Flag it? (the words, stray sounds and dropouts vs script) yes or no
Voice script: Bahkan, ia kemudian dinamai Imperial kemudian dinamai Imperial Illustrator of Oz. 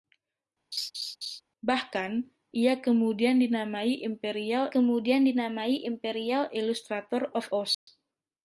yes